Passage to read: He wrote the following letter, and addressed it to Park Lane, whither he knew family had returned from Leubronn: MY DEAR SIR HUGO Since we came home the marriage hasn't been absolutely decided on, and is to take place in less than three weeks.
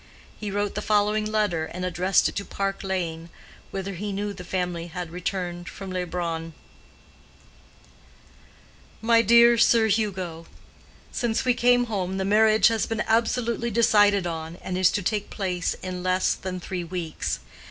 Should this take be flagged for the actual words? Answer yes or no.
yes